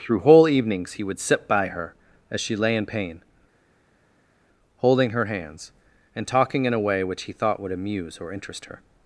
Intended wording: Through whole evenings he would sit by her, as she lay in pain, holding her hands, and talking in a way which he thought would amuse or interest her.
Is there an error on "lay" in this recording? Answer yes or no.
no